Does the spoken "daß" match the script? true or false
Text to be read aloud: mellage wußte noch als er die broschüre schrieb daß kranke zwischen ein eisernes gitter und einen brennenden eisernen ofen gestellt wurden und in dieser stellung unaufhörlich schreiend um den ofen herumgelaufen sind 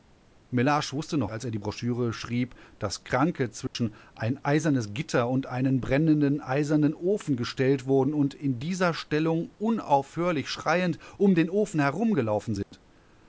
true